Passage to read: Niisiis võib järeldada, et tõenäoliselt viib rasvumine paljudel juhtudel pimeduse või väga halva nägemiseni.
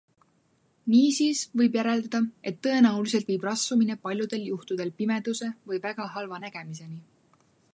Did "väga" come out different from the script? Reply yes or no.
no